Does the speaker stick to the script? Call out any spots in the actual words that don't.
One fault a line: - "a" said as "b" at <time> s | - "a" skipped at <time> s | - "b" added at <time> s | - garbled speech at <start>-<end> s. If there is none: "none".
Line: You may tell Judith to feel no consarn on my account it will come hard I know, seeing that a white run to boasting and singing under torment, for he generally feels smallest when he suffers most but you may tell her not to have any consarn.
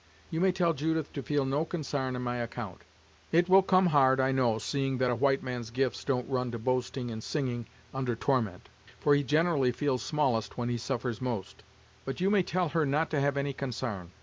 - "man's gifts don't" added at 5.4 s